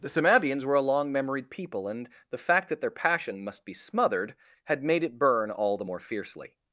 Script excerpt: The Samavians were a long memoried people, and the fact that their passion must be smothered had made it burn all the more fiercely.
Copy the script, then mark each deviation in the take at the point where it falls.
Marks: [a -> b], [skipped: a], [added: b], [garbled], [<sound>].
The Samavians were a long memoried people, and the fact that their passion must be smothered had made it burn all the more fiercely.